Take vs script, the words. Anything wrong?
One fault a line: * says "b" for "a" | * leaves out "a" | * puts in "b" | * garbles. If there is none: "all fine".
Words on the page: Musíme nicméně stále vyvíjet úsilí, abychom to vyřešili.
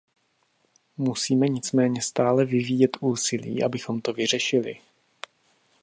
all fine